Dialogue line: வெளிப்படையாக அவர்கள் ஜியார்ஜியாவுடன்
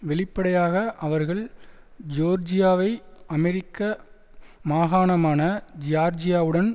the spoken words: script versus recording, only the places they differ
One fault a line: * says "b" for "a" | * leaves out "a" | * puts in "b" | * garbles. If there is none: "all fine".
* puts in "ஜோர்ஜியாவை அமெரிக்க மாகாணமான"